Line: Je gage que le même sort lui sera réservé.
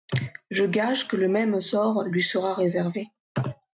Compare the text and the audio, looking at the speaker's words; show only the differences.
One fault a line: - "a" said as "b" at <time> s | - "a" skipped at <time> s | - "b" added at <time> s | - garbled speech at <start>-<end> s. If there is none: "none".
none